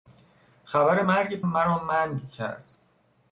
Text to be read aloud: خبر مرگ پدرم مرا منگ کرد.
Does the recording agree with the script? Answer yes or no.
no